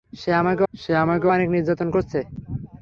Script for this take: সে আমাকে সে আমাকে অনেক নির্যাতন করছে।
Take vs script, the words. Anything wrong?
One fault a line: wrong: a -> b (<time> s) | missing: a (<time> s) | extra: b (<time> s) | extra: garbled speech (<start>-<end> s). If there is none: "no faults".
no faults